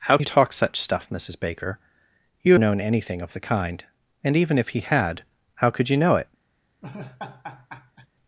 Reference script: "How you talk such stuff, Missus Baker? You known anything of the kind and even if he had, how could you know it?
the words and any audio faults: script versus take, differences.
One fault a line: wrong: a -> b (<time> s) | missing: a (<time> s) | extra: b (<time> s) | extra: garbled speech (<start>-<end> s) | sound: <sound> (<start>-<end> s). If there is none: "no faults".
sound: laugh (6.8-8.1 s)